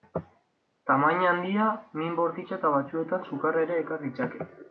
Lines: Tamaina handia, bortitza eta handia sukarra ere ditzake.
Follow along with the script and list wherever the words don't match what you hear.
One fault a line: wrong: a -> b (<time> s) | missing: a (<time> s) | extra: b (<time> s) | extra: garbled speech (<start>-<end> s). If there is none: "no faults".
extra: min (2.0 s)
wrong: handia -> batzuetan (2.8 s)
extra: ekar (3.9 s)